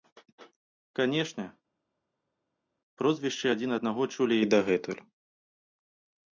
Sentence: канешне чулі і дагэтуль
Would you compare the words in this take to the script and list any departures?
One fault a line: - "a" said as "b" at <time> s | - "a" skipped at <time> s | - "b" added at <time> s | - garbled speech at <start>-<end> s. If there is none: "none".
- "прозвішчы адзін аднаго" added at 3.0 s